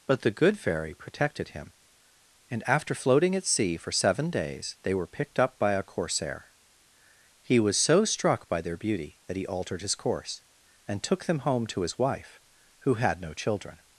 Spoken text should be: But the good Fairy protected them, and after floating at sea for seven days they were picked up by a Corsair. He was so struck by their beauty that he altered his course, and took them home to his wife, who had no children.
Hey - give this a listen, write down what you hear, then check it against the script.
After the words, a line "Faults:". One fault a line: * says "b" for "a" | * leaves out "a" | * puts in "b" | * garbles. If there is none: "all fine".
But the good Fairy protected him, and after floating at sea for seven days they were picked up by a Corsair. He was so struck by their beauty that he altered his course, and took them home to his wife, who had no children.
Faults:
* says "him" for "them"